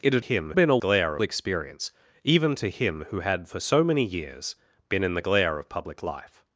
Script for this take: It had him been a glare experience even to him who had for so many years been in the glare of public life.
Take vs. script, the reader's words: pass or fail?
pass